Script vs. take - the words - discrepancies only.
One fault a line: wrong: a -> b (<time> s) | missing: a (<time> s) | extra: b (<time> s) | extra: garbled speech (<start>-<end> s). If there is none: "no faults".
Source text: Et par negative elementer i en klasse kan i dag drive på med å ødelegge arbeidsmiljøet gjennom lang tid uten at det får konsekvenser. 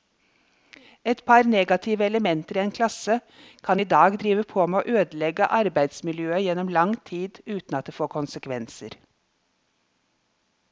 no faults